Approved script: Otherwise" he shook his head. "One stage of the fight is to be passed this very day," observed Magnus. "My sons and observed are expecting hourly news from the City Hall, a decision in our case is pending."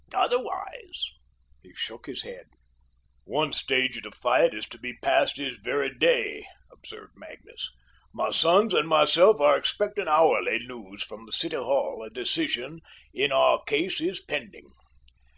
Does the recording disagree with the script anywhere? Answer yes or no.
yes